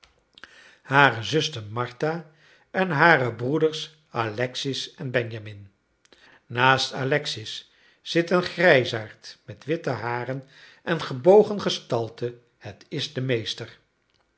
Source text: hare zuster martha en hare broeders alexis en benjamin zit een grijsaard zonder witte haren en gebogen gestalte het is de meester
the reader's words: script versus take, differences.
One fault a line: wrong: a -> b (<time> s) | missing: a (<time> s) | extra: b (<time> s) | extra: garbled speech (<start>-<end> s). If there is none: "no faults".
extra: naast alexis (6.5 s)
wrong: zonder -> met (9.4 s)